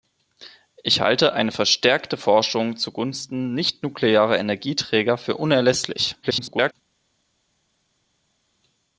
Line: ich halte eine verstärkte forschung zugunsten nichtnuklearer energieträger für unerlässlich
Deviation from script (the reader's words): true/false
true